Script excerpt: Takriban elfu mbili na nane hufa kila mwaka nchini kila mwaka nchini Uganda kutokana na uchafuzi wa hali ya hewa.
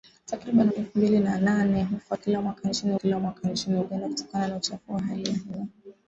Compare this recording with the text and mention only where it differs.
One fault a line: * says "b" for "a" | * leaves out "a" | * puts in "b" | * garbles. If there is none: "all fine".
all fine